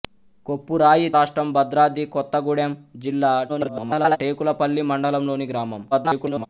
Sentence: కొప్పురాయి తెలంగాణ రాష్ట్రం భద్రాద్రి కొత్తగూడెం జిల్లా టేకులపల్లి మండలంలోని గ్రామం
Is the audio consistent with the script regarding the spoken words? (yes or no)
no